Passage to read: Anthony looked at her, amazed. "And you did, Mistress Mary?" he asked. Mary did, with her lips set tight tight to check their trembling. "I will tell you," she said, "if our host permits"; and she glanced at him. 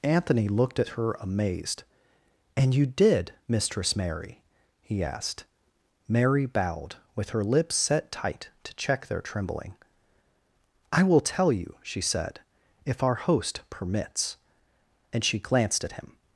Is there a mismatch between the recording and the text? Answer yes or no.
yes